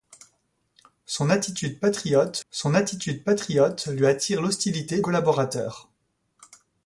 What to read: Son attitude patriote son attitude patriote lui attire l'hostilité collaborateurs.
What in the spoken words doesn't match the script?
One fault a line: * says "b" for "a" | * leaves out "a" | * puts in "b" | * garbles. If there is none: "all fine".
all fine